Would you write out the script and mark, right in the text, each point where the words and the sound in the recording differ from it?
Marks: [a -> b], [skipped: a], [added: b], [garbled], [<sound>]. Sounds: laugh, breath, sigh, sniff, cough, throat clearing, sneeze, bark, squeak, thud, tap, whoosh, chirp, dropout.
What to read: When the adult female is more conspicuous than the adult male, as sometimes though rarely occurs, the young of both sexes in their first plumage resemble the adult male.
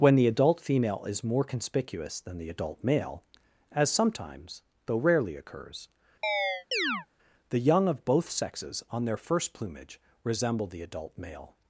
When the adult female is more conspicuous than the adult male, as sometimes though rarely occurs, [chirp] the young of both sexes [in -> on] their first plumage resemble the adult male.